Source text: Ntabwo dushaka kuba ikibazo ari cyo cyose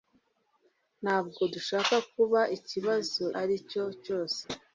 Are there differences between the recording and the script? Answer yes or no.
no